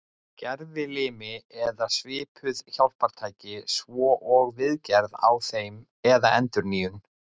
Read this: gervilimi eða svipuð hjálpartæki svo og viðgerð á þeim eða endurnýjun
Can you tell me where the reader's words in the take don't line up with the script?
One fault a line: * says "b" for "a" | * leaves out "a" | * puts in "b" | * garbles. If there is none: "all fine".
all fine